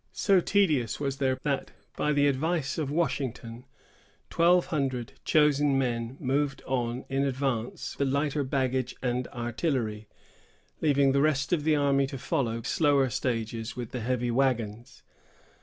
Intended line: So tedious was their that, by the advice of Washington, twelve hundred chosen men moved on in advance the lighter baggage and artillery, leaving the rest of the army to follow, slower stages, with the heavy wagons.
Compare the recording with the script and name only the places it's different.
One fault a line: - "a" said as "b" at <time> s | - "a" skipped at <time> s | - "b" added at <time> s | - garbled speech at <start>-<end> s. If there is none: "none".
none